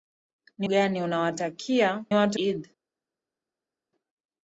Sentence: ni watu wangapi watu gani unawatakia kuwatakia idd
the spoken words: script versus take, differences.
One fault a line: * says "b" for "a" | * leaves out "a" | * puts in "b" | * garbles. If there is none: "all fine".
* leaves out "watu wangapi watu"
* says "watu" for "kuwatakia"